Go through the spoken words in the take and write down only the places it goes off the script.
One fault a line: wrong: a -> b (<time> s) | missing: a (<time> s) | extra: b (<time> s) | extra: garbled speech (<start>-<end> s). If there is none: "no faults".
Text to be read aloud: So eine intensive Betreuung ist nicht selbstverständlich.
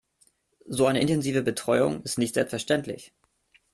no faults